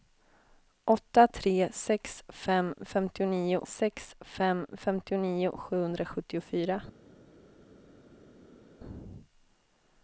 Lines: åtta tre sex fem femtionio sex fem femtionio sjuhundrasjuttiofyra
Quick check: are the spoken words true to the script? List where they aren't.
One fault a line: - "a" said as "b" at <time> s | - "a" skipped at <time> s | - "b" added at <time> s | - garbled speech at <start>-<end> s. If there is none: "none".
none